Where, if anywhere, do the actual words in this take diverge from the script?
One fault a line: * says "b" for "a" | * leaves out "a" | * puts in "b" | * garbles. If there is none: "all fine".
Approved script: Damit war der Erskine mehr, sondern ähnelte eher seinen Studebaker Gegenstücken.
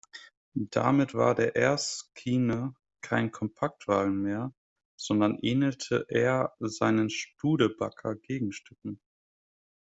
* puts in "kein Kompaktwagen"